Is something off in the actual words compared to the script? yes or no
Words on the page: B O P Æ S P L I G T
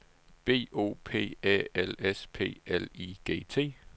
yes